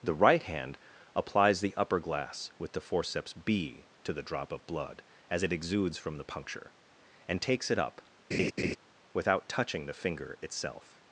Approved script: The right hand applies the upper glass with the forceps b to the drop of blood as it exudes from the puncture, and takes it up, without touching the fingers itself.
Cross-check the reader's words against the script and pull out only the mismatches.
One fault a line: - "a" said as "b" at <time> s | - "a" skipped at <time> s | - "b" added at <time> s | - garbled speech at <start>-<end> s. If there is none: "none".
- "fingers" said as "finger" at 9.9 s